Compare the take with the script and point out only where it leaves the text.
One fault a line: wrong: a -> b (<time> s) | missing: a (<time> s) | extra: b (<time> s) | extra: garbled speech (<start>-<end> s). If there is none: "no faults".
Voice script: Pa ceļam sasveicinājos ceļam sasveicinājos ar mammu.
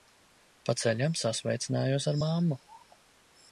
missing: ceļam sasveicinājos (2.1 s)